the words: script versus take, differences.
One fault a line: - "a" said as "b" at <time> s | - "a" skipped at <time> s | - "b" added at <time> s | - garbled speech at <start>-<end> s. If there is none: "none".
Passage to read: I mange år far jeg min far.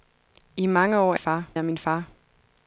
none